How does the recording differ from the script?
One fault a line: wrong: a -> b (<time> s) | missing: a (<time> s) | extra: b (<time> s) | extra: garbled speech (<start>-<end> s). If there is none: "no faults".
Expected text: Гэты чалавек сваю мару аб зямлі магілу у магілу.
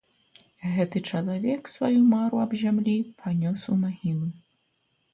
wrong: магілу -> панёс (3.2 s)